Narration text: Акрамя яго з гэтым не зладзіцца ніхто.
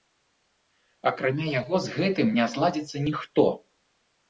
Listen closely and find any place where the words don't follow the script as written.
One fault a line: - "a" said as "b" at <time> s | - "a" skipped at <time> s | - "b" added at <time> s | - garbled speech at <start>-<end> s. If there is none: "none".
none